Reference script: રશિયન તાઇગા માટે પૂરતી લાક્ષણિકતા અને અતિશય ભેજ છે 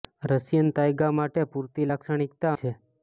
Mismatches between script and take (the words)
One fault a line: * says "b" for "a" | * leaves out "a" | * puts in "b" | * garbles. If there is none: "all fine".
* leaves out "અને અતિશય ભેજ"